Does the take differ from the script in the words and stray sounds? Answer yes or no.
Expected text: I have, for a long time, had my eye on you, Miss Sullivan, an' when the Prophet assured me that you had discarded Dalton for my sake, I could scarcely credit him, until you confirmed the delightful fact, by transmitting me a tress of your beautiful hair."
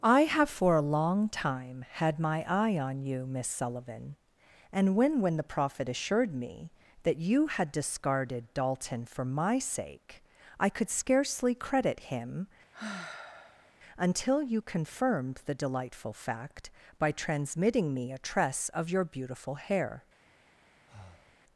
yes